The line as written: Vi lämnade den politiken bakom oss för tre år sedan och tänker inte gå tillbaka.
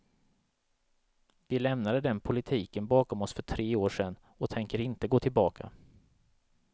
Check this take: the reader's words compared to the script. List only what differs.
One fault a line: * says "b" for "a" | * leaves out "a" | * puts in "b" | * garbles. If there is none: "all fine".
all fine